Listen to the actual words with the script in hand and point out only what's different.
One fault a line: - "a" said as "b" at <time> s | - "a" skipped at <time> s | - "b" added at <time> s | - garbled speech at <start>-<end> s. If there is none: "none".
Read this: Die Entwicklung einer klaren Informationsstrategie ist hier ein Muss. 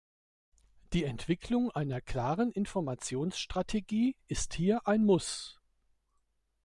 none